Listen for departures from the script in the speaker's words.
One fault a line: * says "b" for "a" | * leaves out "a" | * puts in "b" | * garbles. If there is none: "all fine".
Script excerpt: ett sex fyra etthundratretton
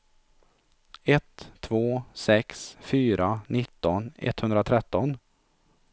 * puts in "två"
* puts in "nitton"